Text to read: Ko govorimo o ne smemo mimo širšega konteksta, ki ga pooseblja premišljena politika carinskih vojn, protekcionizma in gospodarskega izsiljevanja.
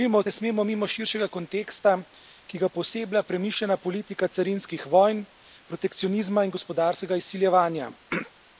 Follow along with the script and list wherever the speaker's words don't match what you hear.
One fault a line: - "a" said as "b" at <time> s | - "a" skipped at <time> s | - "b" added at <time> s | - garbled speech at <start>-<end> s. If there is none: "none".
none